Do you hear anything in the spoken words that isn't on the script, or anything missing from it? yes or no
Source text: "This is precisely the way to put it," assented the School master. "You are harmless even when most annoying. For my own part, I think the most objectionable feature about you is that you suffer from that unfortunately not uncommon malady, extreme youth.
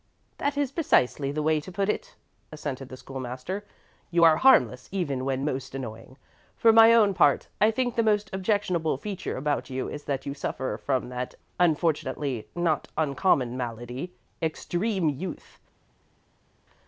yes